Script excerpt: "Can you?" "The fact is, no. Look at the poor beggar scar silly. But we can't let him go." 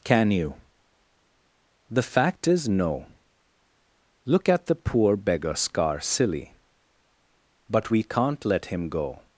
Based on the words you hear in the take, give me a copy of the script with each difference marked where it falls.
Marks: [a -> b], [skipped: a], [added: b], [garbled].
"Can you?" "The fact is, no. Look at the poor beggar scar silly. But we can't let him go."